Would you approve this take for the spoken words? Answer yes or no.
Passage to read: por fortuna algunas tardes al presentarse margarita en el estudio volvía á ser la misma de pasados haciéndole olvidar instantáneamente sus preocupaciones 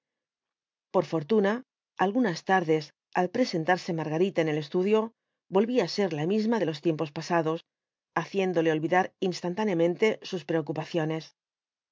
no